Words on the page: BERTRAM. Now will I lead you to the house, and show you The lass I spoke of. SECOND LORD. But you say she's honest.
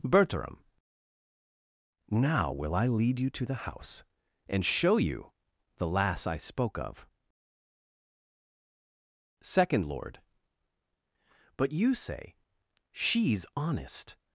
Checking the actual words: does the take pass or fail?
pass